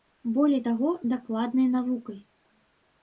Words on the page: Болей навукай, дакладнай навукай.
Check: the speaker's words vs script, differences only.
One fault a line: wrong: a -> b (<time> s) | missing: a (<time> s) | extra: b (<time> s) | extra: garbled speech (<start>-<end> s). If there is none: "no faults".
wrong: навукай -> таго (0.7 s)